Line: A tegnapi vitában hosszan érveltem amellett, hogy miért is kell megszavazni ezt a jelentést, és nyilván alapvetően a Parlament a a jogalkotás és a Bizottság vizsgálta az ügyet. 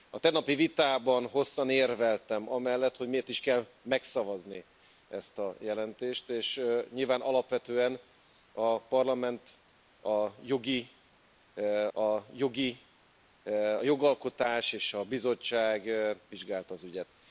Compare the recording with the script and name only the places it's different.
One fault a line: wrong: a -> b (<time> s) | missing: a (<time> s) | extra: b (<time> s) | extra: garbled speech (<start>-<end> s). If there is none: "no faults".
no faults